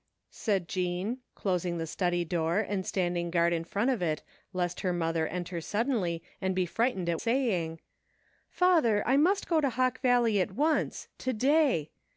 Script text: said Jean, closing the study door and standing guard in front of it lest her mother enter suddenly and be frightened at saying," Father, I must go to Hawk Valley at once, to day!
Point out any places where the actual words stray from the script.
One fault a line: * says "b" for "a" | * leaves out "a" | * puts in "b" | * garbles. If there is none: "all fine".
all fine